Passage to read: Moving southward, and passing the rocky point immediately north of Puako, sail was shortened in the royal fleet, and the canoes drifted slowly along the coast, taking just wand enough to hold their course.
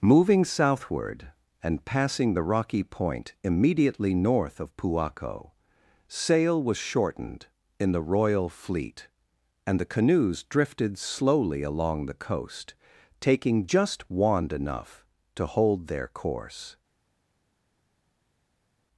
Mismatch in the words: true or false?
false